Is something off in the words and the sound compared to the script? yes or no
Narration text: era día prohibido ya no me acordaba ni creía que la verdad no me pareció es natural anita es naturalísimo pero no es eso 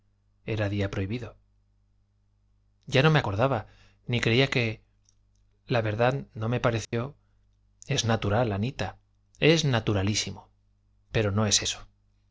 yes